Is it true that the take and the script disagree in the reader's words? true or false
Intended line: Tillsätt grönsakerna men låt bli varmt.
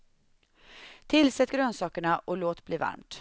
true